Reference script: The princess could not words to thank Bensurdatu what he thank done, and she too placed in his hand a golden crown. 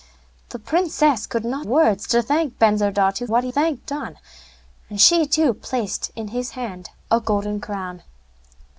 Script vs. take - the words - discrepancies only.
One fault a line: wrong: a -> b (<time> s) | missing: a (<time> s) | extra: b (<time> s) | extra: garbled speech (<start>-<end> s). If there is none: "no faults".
no faults